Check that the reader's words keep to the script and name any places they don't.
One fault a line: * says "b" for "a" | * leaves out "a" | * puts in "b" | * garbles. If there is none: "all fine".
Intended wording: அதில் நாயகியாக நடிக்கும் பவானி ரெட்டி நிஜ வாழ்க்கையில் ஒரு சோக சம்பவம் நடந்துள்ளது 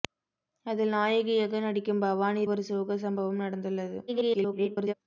* leaves out "ரெட்டி நிஜ வாழ்க்கையில்"
* garbles